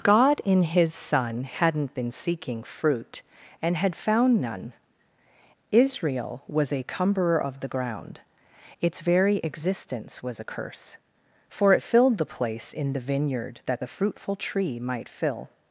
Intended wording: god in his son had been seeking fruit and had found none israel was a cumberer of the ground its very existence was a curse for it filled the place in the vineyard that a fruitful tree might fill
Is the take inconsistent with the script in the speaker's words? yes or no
yes